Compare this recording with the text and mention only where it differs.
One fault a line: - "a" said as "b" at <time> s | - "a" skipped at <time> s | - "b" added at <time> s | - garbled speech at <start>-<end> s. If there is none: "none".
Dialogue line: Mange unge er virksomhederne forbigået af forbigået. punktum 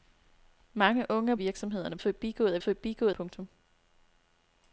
none